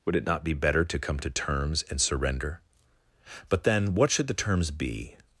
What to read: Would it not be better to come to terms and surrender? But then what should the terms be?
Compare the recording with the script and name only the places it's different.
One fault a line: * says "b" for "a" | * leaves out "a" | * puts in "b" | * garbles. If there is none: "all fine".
all fine